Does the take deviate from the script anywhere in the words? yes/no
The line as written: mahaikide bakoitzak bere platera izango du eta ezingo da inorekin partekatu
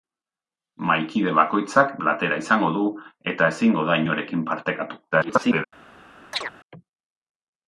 yes